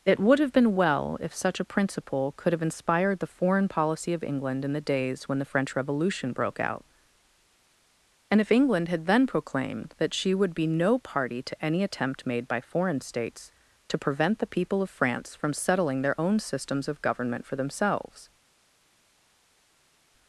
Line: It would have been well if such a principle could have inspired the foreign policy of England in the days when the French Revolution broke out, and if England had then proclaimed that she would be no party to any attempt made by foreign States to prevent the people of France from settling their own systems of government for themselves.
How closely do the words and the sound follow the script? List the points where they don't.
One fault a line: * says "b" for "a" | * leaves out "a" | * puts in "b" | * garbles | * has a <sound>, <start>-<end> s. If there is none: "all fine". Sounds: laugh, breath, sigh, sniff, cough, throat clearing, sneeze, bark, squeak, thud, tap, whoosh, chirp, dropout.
all fine